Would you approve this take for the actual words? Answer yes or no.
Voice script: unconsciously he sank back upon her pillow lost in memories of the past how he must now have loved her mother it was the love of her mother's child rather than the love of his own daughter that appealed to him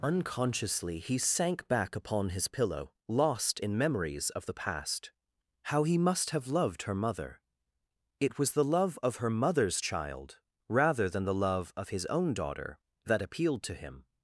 no